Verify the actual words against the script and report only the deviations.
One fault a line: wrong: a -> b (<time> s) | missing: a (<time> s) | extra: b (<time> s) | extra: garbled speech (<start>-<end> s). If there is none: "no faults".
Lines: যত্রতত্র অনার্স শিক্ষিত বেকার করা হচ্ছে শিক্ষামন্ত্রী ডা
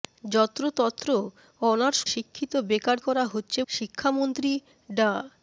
no faults